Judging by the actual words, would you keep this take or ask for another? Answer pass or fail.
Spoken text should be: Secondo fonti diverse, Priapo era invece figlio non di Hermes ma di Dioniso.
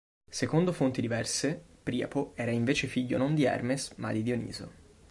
pass